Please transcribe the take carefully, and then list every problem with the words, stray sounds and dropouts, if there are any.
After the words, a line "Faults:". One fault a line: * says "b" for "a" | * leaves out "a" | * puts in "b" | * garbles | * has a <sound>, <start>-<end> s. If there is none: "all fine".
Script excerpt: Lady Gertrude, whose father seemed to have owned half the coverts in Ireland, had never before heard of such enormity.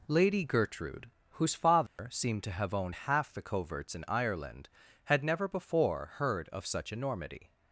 Lady Gertrude, whose father seemed to have owned half the coverts in Ireland, had never before heard of such enormity.
Faults:
* has a dropout, 1.9-2.0 s